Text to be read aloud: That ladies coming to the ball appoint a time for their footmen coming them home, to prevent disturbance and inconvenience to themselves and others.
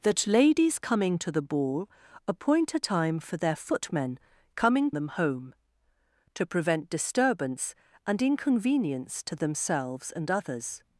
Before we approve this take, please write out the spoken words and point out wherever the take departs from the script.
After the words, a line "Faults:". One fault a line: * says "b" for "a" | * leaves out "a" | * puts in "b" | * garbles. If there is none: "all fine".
That ladies coming to the ball appoint a time for their footmen coming them home, to prevent disturbance and inconvenience to themselves and others.
Faults:
all fine